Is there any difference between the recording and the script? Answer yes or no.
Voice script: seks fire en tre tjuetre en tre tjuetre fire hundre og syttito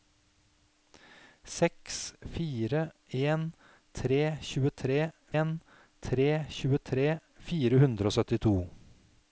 no